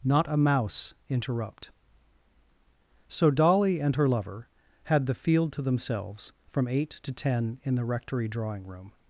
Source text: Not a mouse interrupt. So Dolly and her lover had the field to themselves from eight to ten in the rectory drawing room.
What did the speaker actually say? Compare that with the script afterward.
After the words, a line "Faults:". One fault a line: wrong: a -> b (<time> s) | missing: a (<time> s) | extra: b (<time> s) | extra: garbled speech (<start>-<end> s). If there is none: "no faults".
Not a mouse interrupt. So Dolly and her lover had the field to themselves from eight to ten in the rectory drawing room.
Faults:
no faults